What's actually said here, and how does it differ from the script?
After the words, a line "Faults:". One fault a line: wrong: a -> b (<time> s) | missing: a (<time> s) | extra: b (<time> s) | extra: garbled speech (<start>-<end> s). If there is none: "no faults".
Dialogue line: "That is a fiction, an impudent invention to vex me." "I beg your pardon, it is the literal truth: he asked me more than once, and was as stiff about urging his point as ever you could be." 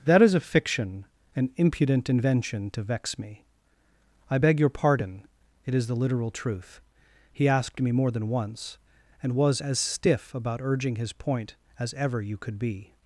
"That is a fiction, an impudent invention to vex me." "I beg your pardon, it is the literal truth: he asked me more than once, and was as stiff about urging his point as ever you could be."
Faults:
no faults